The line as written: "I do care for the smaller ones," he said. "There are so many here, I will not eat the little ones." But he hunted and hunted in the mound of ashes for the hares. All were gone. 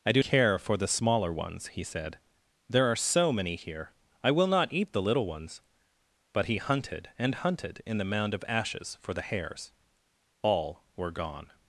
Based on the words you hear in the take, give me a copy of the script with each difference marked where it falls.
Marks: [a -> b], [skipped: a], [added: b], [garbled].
"I do care for the smaller ones," he said. "There are so many here, I will not eat the little ones." But he hunted and hunted in the mound of ashes for the hares. All were gone.